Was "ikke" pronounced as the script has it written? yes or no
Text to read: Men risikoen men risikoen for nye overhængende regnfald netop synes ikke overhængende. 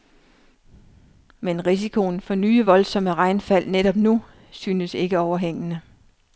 yes